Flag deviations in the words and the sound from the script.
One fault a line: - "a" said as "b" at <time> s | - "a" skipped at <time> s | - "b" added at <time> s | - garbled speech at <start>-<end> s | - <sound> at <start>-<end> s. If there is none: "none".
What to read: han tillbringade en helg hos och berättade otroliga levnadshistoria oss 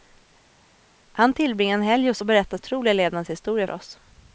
none